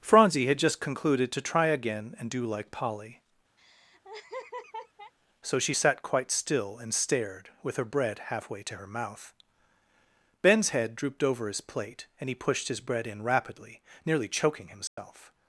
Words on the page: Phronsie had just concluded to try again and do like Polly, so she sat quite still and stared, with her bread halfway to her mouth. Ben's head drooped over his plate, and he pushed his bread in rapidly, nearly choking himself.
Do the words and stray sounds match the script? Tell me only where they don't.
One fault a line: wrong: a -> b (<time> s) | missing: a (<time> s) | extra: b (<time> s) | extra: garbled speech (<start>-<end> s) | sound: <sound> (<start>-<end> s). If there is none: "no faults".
sound: laugh (3.6-5.1 s)
sound: dropout (14.9-15.0 s)